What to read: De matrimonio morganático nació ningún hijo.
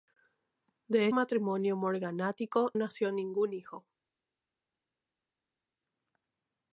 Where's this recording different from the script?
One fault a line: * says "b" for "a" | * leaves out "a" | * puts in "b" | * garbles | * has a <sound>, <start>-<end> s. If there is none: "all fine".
all fine